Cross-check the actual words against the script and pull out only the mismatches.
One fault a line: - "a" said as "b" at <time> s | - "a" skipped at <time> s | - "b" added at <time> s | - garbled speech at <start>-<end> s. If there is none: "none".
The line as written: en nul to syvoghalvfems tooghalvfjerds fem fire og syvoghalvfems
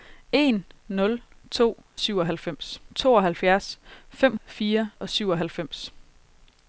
none